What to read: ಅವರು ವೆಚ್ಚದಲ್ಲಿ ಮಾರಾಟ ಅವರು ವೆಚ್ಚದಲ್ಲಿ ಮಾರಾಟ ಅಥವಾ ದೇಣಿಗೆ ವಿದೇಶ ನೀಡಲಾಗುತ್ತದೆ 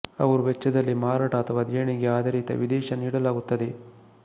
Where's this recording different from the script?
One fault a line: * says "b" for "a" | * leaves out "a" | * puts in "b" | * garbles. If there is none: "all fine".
* leaves out "ಅವರು ವೆಚ್ಚದಲ್ಲಿ ಮಾರಾಟ"
* puts in "ಆಧಾರಿತ"